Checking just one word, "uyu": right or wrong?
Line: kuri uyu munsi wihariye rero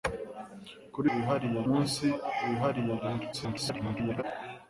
wrong